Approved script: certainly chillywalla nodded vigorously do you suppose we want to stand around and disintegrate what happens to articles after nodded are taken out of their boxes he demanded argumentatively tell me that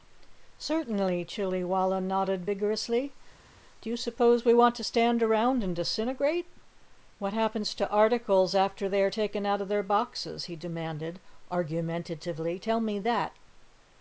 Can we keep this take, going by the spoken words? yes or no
no